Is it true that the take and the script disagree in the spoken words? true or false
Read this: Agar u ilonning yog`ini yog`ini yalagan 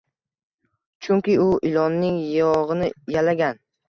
true